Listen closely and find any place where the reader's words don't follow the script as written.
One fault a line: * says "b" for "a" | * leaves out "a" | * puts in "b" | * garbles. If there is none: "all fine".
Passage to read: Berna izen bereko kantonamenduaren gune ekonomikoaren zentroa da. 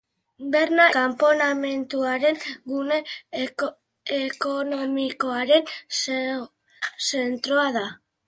* leaves out "izen bereko"